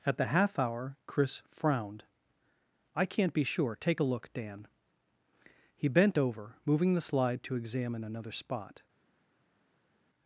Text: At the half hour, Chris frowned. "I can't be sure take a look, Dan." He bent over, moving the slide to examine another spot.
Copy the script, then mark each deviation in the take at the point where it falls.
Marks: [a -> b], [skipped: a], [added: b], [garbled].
At the half hour, Chris frowned. "I can't be sure take a look, Dan." He bent over, moving the slide to examine another spot.